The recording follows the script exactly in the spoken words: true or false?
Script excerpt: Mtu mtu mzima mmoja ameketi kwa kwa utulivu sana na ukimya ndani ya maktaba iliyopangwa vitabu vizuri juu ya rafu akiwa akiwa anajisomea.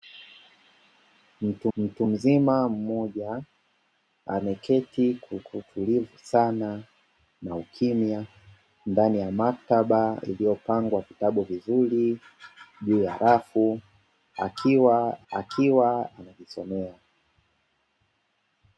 true